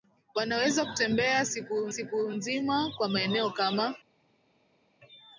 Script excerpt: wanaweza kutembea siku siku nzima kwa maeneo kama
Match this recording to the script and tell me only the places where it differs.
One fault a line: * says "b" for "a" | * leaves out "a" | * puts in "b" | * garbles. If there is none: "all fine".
all fine